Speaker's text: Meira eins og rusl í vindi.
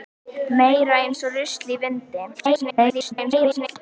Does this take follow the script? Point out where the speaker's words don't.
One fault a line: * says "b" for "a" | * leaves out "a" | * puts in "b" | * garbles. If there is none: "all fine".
* garbles